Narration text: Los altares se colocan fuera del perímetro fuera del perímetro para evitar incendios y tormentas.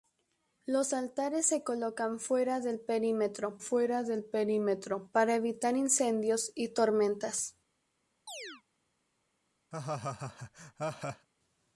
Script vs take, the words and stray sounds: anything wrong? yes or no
yes